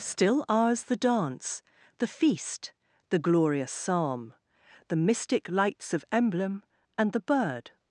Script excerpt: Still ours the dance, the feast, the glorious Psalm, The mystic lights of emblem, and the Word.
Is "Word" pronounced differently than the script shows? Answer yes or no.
yes